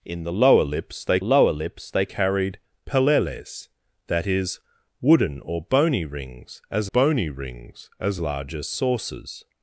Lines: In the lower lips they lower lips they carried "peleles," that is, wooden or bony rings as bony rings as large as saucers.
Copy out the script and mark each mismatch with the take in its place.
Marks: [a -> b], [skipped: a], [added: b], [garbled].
In the lower lips they lower lips they carried "peleles," that is, wooden or bony rings as bony rings as large as saucers.